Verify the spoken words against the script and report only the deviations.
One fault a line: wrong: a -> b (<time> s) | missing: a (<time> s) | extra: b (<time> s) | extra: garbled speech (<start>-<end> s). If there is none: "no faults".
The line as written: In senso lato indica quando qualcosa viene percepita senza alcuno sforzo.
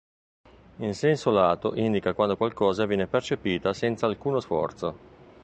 no faults